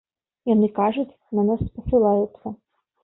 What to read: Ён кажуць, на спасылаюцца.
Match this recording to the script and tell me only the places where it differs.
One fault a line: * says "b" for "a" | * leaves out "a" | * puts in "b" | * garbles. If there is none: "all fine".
* says "Яны" for "Ён"
* puts in "нас"